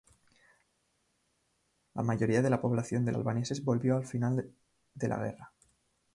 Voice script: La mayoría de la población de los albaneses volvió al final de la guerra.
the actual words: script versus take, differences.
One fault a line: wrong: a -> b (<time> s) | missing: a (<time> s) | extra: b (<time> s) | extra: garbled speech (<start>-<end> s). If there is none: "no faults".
missing: los (3.1 s)